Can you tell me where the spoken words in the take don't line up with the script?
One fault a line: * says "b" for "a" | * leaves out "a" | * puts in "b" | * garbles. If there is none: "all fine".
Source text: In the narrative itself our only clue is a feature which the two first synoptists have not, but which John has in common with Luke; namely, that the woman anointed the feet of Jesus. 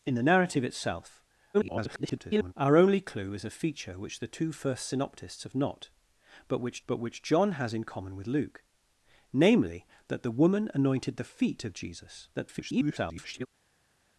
* garbles
* puts in "but which"
* garbles